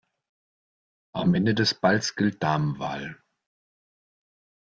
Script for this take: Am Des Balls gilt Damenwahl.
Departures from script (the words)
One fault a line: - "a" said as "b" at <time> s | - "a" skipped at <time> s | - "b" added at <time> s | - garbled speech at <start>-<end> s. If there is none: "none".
- "Ende" added at 1.3 s